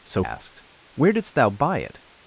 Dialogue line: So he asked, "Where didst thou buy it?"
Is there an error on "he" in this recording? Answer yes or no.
yes